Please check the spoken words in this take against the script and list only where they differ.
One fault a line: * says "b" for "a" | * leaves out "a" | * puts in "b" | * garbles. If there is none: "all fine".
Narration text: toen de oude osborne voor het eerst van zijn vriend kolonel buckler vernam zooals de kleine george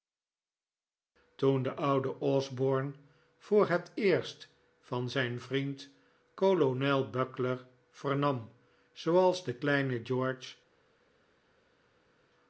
all fine